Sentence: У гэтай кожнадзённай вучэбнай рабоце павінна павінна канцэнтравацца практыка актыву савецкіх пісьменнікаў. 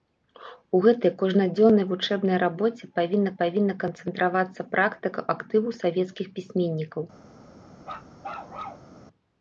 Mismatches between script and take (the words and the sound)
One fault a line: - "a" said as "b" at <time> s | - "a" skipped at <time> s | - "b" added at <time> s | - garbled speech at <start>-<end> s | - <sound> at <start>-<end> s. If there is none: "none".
- bark at 7.8-8.9 s